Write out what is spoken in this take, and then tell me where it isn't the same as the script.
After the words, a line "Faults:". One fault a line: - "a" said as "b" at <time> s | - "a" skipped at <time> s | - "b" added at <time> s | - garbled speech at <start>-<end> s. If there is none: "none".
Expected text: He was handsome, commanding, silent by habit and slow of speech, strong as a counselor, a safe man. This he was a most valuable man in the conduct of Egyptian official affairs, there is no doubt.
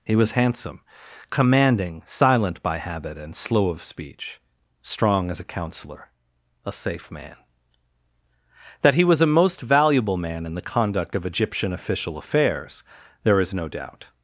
He was handsome, commanding, silent by habit and slow of speech, strong as a counselor, a safe man. That he was a most valuable man in the conduct of Egyptian official affairs, there is no doubt.
Faults:
- "This" said as "That" at 8.8 s